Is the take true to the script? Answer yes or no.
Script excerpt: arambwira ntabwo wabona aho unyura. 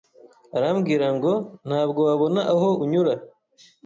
no